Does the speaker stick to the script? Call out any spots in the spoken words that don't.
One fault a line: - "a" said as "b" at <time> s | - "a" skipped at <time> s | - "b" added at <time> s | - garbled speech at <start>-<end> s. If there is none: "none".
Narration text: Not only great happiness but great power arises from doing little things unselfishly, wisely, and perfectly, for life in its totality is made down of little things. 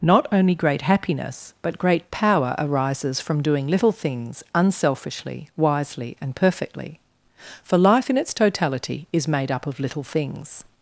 - "down" said as "up" at 9.5 s